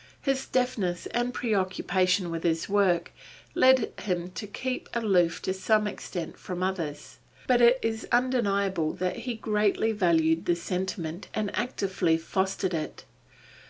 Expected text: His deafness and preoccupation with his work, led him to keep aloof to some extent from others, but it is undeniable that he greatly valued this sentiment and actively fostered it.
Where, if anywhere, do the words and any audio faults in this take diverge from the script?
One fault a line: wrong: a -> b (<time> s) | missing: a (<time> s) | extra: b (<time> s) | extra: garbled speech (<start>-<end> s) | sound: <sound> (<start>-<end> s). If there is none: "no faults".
no faults